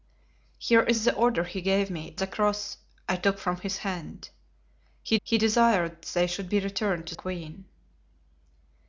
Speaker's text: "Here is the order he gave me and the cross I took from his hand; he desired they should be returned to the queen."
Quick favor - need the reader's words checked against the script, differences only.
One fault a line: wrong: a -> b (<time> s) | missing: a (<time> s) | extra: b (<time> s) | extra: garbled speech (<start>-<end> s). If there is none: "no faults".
missing: and (2.1 s)
extra: he (5.2 s)
missing: the (7.1 s)